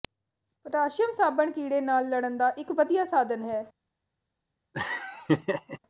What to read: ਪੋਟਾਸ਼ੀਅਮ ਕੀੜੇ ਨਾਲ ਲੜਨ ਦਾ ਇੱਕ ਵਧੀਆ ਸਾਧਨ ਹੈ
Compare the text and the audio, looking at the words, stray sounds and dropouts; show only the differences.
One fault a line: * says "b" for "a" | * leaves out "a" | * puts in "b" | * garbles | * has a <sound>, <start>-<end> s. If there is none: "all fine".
* puts in "ਸਾਬਣ"
* has a laugh, 4.7-5.8 s